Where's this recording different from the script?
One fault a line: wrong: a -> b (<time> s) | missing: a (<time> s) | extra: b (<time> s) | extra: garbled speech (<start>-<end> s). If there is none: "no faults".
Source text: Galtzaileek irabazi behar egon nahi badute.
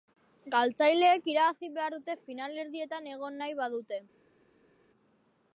extra: dute finalerdietan (2.0 s)